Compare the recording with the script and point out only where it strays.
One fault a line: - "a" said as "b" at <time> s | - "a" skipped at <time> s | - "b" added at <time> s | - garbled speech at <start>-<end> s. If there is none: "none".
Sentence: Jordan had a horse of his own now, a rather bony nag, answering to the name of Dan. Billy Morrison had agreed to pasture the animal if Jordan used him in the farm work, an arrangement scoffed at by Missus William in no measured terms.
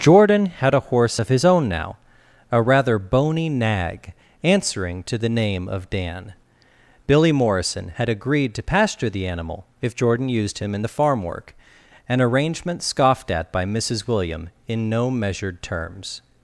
none